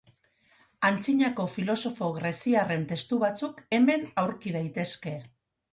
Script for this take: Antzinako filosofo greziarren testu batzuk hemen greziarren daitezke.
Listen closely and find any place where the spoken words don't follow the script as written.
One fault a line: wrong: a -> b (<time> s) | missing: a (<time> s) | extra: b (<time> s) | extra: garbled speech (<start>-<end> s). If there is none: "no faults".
wrong: greziarren -> aurki (4.3 s)